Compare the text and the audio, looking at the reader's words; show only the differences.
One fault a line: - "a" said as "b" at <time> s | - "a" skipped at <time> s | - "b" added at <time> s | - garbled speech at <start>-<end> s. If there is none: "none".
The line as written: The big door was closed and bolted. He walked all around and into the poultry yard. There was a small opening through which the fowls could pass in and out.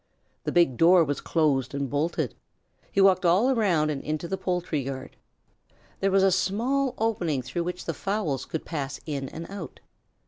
none